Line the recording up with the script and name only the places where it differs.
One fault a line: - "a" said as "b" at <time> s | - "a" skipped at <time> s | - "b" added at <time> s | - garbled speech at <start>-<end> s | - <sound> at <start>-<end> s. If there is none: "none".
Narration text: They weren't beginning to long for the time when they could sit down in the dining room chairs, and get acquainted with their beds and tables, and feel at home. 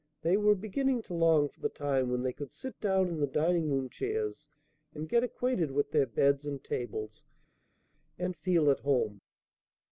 - "weren't" said as "were" at 0.3 s